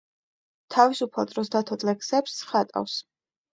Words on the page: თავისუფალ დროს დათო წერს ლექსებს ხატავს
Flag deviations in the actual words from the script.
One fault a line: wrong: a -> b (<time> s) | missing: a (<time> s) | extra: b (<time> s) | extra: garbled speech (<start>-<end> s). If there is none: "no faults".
missing: წერს (1.8 s)